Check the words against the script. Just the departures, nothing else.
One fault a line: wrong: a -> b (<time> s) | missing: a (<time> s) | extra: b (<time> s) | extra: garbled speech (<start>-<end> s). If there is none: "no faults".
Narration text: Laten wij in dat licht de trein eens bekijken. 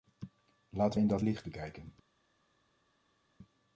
missing: wij (1.0 s)
missing: de trein eens (1.4 s)